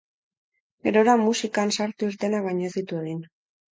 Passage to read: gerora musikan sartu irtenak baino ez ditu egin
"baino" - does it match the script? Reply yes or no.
yes